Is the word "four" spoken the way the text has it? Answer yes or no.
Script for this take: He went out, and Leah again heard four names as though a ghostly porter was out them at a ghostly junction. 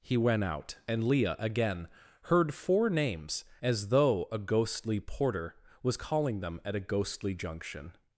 yes